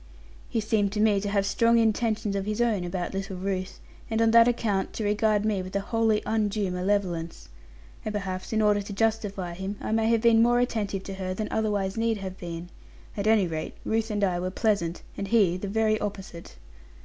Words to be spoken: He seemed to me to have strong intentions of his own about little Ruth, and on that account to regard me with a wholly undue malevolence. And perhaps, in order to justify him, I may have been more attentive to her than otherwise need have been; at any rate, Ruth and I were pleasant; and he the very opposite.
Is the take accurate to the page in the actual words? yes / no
yes